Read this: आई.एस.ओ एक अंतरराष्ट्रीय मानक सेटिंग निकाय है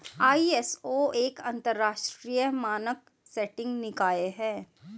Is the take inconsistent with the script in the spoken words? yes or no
no